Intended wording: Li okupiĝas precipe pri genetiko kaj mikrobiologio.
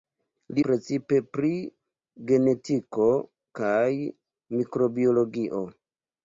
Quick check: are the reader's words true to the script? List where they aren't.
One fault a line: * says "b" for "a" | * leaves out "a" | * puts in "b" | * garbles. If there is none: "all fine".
* leaves out "okupiĝas"